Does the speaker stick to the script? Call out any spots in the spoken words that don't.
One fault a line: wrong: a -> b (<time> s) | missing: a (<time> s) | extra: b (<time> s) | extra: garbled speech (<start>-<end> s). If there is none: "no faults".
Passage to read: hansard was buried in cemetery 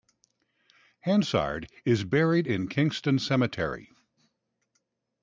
wrong: was -> is (1.8 s)
extra: kingston (2.7 s)